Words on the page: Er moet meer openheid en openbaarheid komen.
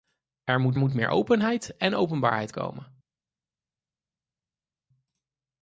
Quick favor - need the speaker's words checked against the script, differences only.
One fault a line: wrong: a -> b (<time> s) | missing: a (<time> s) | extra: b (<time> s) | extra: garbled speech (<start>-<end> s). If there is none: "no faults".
extra: moet (0.8 s)